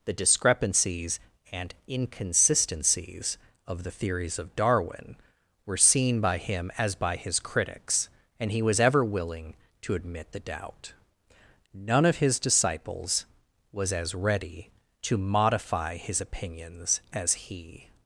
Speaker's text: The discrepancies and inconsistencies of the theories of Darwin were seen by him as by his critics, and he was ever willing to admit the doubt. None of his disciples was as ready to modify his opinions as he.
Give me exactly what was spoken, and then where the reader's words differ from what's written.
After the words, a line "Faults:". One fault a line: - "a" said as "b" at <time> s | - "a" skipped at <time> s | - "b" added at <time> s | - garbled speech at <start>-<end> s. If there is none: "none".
The discrepancies and inconsistencies of the theories of Darwin were seen by him as by his critics, and he was ever willing to admit the doubt. None of his disciples was as ready to modify his opinions as he.
Faults:
none